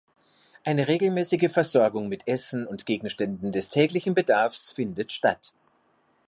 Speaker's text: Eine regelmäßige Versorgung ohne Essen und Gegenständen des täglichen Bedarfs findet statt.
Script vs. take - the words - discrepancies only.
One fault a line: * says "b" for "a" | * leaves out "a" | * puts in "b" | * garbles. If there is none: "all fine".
* says "mit" for "ohne"